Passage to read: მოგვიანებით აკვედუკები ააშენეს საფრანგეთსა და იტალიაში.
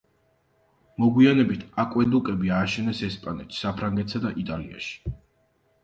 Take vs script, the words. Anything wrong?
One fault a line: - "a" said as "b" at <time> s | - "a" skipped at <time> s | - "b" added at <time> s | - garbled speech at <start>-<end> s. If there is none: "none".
- "ესპანეთში" added at 3.1 s